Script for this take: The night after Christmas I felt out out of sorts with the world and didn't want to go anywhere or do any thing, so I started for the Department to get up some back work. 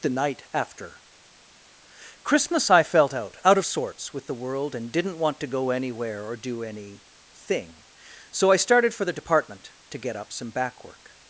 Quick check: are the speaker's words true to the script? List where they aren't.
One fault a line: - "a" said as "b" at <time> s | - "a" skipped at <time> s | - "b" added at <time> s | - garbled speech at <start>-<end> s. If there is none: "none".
none